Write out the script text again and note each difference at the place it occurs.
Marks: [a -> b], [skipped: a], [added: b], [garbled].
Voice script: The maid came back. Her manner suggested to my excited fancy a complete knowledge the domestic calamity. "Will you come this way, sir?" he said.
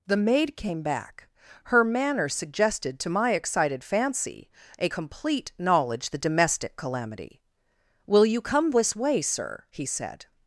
The maid came back. Her manner suggested to my excited fancy a complete knowledge the domestic calamity. "Will you come this way, sir?" he said.